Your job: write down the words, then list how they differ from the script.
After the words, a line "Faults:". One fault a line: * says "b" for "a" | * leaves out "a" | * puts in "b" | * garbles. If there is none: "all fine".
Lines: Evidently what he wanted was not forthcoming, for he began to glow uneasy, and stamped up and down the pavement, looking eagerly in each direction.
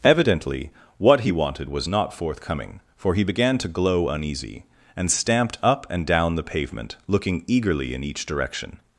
Evidently what he wanted was not forthcoming, for he began to glow uneasy, and stamped up and down the pavement, looking eagerly in each direction.
Faults:
all fine